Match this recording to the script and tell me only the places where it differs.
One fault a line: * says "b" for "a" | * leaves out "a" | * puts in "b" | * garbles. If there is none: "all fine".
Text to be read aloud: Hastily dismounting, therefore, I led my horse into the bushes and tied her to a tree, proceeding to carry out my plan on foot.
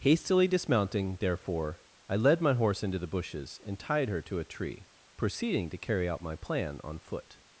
all fine